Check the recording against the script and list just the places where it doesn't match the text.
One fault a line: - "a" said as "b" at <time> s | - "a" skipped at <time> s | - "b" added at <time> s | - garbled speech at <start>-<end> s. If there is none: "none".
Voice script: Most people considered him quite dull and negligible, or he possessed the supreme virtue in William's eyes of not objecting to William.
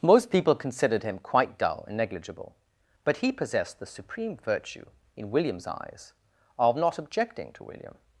- "or" said as "but" at 3.0 s